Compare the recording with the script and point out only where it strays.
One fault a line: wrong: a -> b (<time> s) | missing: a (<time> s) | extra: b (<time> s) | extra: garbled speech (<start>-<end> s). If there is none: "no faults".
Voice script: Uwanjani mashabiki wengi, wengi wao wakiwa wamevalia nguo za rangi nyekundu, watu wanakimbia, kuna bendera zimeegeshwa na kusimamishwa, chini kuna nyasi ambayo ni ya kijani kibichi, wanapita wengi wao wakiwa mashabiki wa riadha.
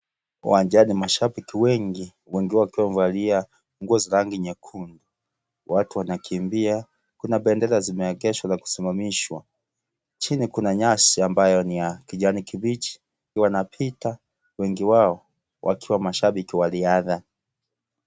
no faults